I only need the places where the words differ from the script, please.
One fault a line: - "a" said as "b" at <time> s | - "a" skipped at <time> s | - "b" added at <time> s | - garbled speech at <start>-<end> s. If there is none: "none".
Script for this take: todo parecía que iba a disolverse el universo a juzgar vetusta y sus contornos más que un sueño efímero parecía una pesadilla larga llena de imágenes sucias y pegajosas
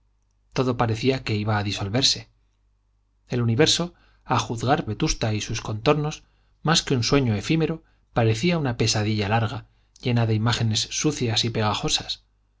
none